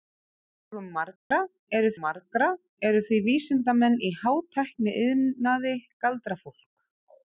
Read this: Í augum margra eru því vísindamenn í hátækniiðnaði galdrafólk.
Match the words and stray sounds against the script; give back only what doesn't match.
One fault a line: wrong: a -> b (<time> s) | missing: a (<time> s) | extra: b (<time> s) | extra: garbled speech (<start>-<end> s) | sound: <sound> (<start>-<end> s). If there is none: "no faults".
sound: dropout (1.2-1.3 s)
extra: margra eru (2.0 s)